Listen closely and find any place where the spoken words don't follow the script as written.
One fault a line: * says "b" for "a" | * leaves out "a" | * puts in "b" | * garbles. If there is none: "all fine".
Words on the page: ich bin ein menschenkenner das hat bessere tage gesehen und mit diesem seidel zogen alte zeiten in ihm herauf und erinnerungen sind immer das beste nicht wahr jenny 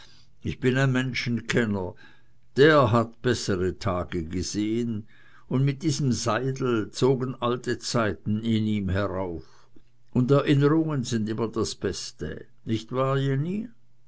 * says "der" for "das"